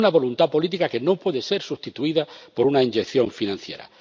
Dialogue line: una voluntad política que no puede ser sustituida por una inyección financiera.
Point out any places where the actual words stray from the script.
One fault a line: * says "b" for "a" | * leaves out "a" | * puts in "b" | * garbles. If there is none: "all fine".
all fine